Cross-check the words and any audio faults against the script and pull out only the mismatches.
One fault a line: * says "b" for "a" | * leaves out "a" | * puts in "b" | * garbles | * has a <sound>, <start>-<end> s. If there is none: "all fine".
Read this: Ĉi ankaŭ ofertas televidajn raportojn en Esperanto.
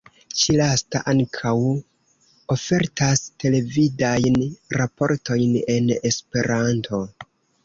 * puts in "lasta"